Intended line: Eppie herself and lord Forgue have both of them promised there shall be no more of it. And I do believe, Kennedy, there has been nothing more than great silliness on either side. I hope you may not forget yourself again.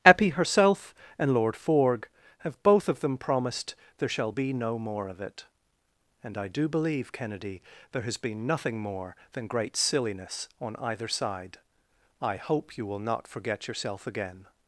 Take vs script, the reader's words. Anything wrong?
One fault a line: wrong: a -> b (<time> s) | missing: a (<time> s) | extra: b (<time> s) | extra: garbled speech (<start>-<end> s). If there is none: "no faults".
wrong: may -> will (12.8 s)